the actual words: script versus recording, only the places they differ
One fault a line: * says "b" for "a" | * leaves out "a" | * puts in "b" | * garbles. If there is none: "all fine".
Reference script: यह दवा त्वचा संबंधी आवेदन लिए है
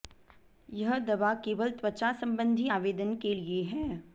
* puts in "केवल"
* puts in "के"